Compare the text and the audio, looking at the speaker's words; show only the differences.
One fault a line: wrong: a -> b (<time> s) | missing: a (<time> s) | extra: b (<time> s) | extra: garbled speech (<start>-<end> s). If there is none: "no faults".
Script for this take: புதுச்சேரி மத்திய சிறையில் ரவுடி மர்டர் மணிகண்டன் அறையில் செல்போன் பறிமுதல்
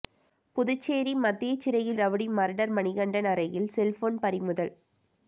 no faults